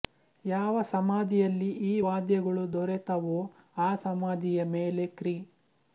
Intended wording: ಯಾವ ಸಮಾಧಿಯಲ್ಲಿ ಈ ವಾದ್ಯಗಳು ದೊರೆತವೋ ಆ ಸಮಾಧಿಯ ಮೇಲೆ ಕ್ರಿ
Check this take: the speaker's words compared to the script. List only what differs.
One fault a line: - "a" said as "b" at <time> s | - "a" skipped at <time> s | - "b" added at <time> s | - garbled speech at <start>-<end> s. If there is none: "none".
none